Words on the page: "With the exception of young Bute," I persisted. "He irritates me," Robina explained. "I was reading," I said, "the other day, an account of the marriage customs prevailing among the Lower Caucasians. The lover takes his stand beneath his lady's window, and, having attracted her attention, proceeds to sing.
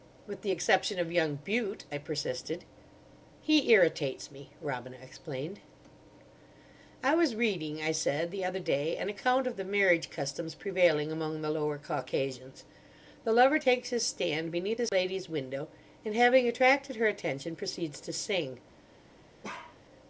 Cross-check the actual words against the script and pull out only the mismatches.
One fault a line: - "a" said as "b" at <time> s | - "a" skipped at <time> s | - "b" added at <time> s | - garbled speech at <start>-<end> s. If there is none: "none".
none